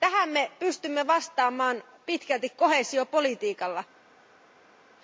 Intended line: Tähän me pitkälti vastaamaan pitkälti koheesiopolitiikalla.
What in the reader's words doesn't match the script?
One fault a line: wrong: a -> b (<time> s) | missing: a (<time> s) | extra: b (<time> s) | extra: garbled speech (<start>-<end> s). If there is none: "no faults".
wrong: pitkälti -> pystymme (0.6 s)